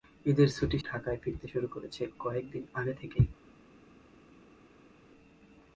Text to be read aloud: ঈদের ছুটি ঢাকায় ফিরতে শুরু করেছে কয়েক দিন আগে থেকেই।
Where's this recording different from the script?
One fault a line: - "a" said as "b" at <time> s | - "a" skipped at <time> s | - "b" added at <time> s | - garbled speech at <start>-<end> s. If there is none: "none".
none